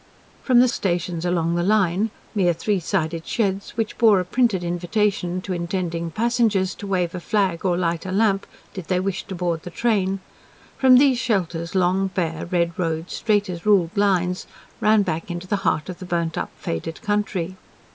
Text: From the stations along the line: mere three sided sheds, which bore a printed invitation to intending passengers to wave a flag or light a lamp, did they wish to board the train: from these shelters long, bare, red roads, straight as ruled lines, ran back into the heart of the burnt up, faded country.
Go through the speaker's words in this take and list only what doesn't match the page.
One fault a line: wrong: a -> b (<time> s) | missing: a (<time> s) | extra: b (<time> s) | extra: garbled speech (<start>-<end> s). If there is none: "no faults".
no faults